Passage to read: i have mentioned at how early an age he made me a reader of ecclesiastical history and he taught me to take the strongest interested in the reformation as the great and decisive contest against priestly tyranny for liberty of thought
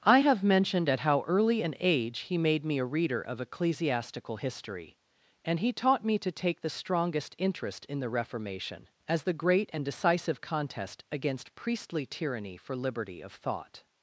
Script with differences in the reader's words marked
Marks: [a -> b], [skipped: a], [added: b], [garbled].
i have mentioned at how early an age he made me a reader of ecclesiastical history and he taught me to take the strongest [interested -> interest] in the reformation as the great and decisive contest against priestly tyranny for liberty of thought